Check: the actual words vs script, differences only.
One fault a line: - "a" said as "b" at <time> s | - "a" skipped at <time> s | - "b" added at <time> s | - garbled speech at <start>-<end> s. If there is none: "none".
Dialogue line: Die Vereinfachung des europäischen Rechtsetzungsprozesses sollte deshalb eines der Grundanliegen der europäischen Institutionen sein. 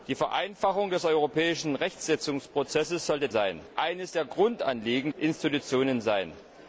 - "deshalb" said as "sein" at 3.3 s
- "der europäischen" skipped at 5.1 s